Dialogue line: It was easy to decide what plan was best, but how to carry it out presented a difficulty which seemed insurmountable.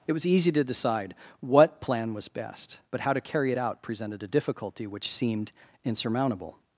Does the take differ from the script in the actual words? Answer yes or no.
no